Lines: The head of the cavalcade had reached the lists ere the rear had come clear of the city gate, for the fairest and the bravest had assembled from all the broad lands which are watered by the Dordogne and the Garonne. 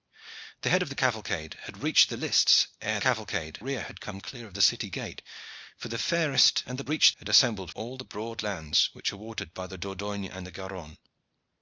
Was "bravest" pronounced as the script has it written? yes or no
no